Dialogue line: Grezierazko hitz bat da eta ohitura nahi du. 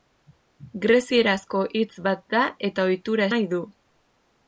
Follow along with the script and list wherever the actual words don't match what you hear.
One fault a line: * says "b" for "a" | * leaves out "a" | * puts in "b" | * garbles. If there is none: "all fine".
all fine